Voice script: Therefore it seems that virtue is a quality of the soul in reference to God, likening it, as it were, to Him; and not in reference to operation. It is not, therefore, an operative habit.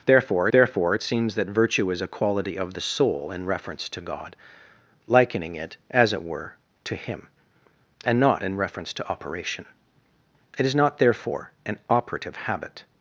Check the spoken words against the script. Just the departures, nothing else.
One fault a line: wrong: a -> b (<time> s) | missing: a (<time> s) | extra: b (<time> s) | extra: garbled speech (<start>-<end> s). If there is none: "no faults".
extra: therefore (0.5 s)